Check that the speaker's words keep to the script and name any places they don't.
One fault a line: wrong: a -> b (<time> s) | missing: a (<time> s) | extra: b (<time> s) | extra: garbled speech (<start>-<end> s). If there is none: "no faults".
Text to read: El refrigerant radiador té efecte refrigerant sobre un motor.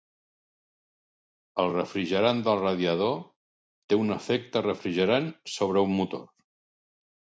extra: del (2.5 s)
extra: un (4.0 s)